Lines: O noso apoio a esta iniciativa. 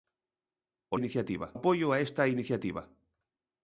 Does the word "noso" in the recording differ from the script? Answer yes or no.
yes